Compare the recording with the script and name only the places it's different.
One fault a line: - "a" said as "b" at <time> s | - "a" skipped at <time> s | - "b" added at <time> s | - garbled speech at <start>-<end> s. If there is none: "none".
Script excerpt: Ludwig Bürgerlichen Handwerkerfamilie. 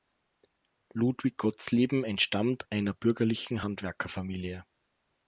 - "Gottsleben entstammt einer" added at 1.4 s